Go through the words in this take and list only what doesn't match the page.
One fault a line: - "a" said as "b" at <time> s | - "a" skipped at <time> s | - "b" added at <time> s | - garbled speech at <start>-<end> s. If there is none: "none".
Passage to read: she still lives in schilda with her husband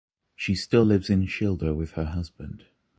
none